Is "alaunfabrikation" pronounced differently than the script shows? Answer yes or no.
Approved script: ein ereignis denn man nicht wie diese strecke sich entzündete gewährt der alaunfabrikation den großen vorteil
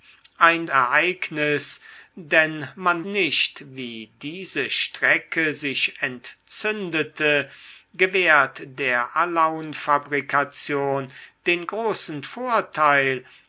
no